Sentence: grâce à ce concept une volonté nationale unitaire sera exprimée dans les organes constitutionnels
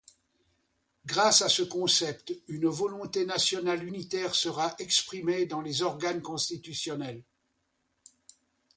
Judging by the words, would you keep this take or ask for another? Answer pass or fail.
pass